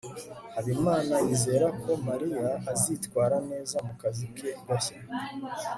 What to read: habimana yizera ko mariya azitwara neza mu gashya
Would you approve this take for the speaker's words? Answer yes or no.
no